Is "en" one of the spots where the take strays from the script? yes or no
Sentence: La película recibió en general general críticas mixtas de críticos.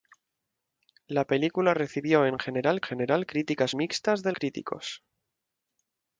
no